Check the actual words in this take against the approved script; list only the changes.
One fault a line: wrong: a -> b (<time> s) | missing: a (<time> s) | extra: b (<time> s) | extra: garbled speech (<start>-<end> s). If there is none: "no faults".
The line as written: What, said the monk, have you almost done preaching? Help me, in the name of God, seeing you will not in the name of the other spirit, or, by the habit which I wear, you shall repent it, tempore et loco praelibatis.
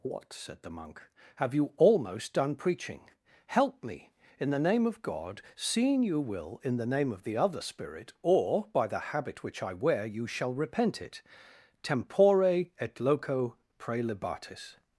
missing: not (6.6 s)